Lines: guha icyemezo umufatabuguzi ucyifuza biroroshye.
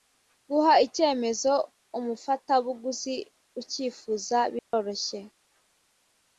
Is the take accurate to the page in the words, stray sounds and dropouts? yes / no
no